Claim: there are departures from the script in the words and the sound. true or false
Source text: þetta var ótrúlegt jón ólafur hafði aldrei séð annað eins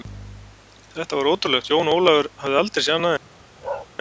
true